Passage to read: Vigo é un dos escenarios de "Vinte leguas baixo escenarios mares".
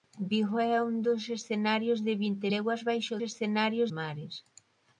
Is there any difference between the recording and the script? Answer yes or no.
no